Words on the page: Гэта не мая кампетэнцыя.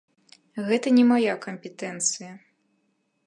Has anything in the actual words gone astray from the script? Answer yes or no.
no